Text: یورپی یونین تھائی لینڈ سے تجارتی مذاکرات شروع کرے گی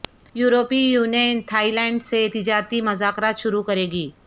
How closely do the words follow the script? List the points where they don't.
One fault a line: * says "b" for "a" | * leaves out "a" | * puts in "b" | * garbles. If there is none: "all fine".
all fine